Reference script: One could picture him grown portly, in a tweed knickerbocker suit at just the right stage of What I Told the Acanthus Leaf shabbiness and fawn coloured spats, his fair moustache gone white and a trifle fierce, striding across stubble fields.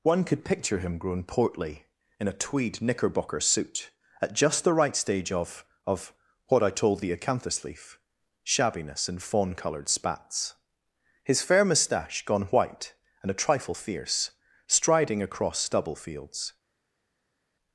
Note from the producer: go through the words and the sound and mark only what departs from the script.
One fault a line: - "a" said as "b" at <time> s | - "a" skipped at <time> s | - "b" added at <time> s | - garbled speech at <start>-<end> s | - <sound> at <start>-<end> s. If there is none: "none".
- "of" added at 5.8 s